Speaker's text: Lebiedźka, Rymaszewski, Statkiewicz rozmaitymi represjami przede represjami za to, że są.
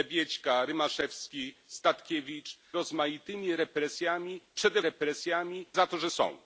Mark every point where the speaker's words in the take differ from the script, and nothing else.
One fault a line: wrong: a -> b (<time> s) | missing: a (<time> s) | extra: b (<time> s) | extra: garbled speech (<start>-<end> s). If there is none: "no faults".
no faults